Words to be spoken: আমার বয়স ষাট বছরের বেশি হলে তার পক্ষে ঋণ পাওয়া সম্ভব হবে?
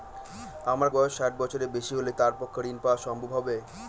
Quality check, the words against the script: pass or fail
pass